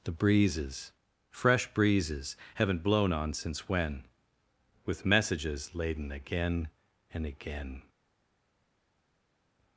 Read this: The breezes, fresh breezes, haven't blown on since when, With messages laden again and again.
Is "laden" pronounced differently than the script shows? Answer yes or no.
no